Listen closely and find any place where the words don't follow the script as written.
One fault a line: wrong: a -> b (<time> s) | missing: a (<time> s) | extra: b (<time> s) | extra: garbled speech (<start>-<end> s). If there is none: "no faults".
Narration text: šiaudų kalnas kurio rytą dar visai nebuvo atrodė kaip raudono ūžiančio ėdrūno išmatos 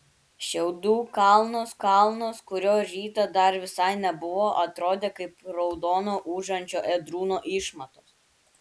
extra: kalnas (1.8 s)